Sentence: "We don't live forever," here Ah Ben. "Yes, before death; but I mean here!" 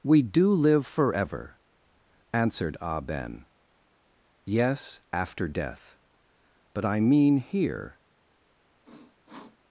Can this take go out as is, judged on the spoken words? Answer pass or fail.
fail